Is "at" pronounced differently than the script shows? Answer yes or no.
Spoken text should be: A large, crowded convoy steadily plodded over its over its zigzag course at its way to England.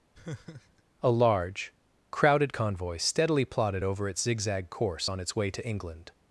yes